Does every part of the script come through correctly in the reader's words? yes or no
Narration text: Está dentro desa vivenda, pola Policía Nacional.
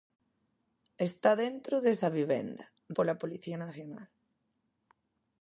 yes